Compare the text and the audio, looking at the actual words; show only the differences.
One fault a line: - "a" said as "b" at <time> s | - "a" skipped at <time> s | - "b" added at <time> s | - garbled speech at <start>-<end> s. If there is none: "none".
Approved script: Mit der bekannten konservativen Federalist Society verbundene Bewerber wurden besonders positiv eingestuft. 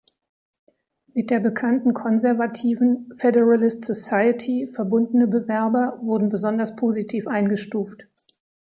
none